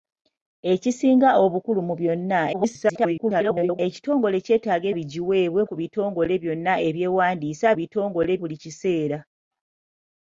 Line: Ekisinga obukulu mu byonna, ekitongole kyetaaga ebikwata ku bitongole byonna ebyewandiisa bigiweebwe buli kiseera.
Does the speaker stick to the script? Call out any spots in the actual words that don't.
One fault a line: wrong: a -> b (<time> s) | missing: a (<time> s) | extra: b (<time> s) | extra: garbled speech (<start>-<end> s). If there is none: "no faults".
extra: garbled speech (2.5-3.8 s)
wrong: ebikwata -> bigiweebwe (5.0 s)
wrong: bigiweebwe -> bitongole (7.8 s)